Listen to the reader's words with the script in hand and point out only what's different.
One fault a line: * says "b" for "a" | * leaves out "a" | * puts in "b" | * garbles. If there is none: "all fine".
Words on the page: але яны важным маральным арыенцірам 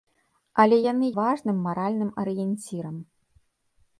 all fine